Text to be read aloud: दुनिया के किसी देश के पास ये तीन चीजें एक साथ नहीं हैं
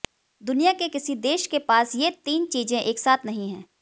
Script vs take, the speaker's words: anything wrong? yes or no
no